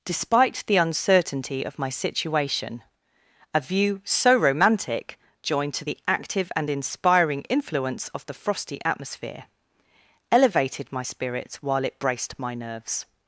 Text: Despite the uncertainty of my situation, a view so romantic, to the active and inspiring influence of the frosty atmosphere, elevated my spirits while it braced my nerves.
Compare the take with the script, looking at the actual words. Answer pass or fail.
fail